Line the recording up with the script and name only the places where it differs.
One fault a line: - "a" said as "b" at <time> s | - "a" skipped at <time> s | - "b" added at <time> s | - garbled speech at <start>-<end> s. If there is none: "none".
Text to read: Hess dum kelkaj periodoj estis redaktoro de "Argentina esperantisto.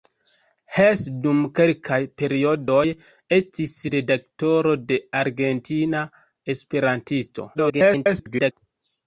- garbled speech at 7.5-8.5 s